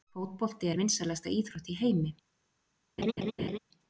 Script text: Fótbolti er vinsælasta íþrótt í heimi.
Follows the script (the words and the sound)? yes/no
no